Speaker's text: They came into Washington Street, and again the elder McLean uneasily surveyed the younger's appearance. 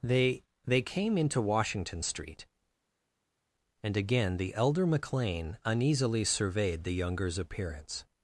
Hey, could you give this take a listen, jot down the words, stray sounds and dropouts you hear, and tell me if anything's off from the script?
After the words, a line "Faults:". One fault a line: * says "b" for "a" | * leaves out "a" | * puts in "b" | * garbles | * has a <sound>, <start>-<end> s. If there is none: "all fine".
They they came into Washington Street, and again the elder McLean uneasily surveyed the younger's appearance.
Faults:
* puts in "they"